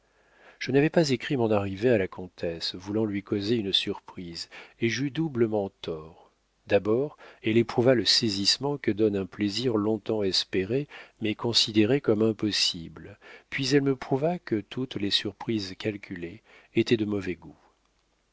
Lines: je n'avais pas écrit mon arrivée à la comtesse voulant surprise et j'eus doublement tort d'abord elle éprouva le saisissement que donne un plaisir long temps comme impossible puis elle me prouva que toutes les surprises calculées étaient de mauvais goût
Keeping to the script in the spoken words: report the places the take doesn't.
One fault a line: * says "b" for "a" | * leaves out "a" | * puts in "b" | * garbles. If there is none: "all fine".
* puts in "lui causer une"
* puts in "espéré mais considéré"